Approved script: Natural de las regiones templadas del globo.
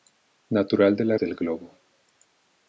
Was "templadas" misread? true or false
true